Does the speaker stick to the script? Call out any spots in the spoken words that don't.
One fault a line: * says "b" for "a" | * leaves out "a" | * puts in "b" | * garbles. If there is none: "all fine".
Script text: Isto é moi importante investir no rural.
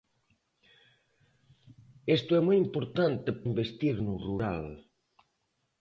all fine